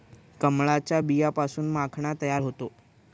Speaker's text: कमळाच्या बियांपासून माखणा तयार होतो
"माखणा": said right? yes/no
yes